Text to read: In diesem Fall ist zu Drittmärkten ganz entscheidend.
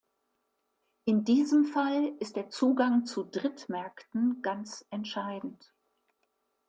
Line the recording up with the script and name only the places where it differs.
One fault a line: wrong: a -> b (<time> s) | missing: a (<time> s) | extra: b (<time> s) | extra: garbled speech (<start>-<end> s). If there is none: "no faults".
extra: der Zugang (2.4 s)